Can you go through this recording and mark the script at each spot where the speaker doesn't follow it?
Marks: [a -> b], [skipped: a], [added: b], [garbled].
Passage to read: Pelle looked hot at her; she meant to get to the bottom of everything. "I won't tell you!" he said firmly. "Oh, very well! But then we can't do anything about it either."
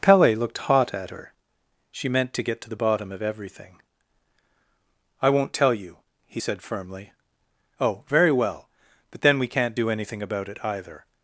Pelle looked hot at her; she meant to get to the bottom of everything. "I won't tell you!" he said firmly. "Oh, very well! But then we can't do anything about it either."